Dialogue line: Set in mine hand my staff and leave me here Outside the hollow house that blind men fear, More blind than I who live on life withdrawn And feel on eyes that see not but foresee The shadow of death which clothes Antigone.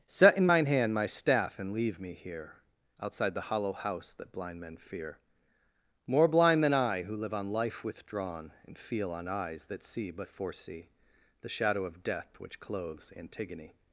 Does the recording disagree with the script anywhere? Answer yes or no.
yes